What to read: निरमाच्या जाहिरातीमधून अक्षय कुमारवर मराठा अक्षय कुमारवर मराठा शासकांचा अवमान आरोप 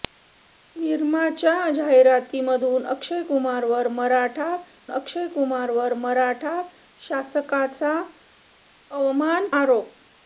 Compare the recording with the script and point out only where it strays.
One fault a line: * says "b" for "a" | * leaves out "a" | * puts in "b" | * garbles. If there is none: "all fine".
all fine